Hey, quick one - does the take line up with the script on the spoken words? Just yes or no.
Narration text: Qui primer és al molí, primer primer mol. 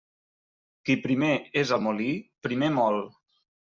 no